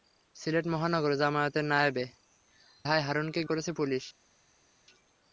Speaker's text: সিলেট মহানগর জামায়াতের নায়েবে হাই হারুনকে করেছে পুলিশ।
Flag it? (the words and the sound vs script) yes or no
no